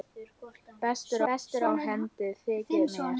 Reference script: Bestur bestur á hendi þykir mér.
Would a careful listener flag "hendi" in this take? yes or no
no